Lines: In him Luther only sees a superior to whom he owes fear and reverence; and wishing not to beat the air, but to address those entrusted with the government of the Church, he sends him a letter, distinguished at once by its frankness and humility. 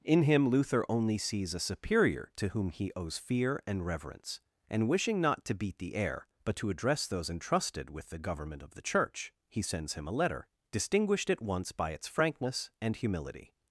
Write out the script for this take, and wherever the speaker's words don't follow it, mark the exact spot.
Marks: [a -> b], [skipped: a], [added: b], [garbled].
In him Luther only sees a superior to whom he owes fear and reverence; and wishing not to beat the air, but to address those entrusted with the government of the Church, he sends him a letter, distinguished at once by its frankness and humility.